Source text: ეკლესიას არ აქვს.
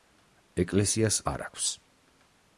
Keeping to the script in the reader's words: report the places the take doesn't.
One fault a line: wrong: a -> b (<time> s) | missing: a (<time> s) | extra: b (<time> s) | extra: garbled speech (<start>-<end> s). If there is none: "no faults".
no faults